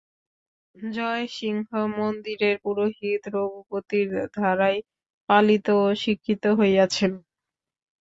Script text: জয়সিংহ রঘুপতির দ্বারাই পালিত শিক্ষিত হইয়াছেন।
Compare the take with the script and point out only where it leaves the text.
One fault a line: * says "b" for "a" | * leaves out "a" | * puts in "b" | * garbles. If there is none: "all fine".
* puts in "মন্দিরের পুরোহিত"
* puts in "ও"